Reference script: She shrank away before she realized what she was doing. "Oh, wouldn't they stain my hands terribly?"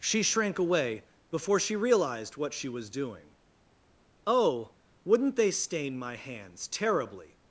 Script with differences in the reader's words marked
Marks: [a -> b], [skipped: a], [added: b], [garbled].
She shrank away before she realized what she was doing. "Oh, wouldn't they stain my hands terribly?"